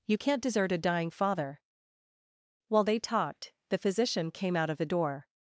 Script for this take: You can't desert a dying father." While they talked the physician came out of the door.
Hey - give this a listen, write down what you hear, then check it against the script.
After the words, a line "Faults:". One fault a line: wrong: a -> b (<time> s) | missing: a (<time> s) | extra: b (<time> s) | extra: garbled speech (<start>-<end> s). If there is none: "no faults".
You can't desert a dying father." While they talked the physician came out of the door.
Faults:
no faults